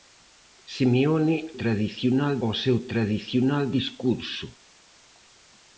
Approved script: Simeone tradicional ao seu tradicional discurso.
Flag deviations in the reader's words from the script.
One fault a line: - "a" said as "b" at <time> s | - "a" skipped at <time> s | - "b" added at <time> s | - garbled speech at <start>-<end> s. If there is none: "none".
none